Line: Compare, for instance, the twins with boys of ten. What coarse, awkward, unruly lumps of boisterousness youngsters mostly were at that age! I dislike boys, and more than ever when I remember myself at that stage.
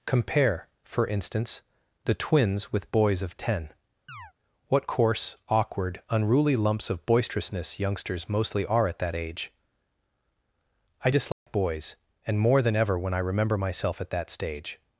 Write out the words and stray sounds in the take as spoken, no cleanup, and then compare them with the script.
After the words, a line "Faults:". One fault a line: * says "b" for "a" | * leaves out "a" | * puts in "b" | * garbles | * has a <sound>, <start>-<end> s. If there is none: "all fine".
Compare, for instance, the twins with boys of ten. What coarse, awkward, unruly lumps of boisterousness youngsters mostly are at that age! I dislike boys, and more than ever when I remember myself at that stage.
Faults:
* has a chirp, 4.1-4.3 s
* says "are" for "were"
* has a dropout, 11.3-11.5 s